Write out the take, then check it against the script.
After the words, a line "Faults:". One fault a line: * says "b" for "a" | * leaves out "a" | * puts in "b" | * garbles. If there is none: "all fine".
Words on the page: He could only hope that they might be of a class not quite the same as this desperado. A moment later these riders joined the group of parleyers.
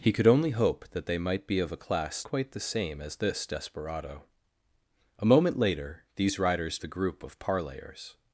He could only hope that they might be of a class quite the same as this desperado. A moment later these riders the group of parleyers.
Faults:
* leaves out "not"
* leaves out "joined"